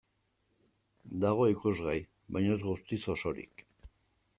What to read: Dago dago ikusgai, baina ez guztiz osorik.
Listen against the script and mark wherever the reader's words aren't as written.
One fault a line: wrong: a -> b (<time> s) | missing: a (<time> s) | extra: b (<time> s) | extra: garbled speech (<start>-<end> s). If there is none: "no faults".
missing: dago (1.4 s)